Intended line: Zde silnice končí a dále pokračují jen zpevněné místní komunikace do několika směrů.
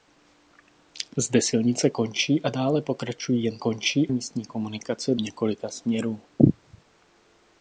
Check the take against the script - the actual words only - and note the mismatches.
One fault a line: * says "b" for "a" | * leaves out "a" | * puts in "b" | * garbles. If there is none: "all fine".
* says "končí" for "zpevněné"
* leaves out "do"